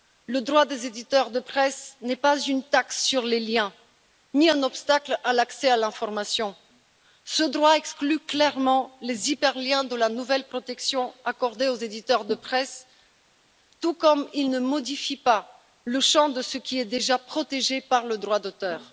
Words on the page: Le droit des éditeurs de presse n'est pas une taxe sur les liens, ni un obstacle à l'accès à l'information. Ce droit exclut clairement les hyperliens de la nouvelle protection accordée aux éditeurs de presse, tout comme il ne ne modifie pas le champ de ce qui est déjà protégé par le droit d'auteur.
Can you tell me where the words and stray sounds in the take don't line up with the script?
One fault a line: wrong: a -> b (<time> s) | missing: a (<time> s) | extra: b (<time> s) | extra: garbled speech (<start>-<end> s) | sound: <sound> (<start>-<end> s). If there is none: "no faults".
missing: ne (14.6 s)